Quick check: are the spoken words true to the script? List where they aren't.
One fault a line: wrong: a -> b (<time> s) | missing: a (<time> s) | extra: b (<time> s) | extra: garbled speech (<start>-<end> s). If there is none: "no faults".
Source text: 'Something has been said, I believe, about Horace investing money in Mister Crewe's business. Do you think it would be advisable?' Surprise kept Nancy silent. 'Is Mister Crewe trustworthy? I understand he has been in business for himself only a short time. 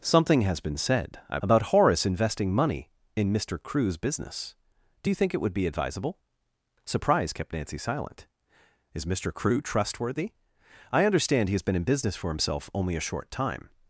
missing: believe (1.4 s)